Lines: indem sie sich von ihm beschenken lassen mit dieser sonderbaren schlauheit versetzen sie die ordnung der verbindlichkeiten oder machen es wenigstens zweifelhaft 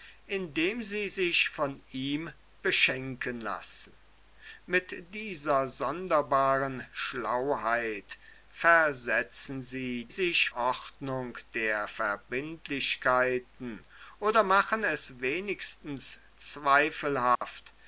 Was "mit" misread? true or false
false